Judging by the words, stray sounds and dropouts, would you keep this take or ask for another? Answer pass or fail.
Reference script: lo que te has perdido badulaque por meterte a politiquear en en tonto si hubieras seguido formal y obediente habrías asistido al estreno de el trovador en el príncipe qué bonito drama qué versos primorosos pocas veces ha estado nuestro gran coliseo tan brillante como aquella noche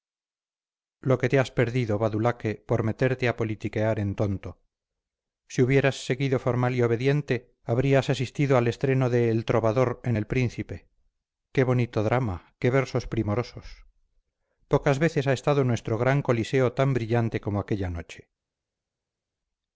fail